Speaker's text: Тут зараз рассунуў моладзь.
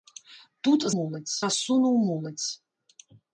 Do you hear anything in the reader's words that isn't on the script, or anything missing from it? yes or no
yes